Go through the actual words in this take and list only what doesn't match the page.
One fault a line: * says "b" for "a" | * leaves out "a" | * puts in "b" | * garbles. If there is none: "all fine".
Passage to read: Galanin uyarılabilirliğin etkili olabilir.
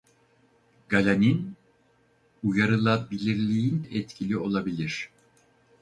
all fine